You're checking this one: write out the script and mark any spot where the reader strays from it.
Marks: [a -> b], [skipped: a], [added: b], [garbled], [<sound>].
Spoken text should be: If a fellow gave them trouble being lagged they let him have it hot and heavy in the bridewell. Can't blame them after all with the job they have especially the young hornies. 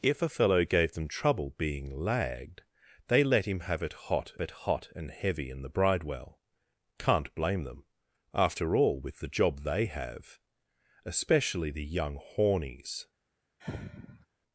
If a fellow gave them trouble being lagged they let him have it hot [added: it hot] and heavy in the bridewell. Can't blame them after all with the job they have especially the young hornies. [sigh]